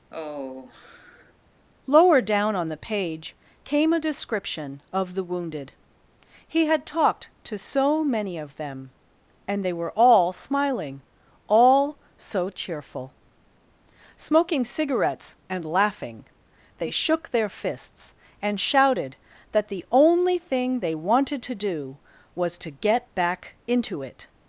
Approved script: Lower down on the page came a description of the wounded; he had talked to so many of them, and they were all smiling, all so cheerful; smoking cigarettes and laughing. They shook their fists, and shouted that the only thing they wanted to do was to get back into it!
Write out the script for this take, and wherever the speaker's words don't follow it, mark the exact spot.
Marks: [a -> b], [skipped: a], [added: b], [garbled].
Lower down on the page came a description of the wounded; he had talked to so many of them, and they were all smiling, all so cheerful; smoking cigarettes and laughing. They shook their fists, and shouted that the only thing they wanted to do was to get back into it!